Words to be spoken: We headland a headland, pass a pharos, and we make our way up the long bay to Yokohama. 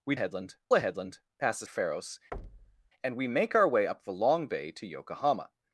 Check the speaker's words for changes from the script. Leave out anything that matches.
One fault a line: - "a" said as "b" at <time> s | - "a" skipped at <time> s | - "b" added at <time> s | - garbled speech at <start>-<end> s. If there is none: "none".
none